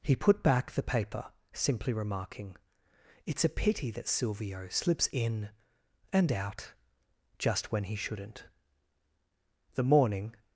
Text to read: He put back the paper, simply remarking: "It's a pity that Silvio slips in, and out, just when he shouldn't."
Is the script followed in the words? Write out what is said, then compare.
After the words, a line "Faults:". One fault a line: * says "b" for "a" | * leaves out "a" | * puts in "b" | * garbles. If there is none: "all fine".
He put back the paper, simply remarking: "It's a pity that Silvio slips in, and out, just when he shouldn't." The morning
Faults:
* puts in "The morning"